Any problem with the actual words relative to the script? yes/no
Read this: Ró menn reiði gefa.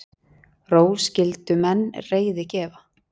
yes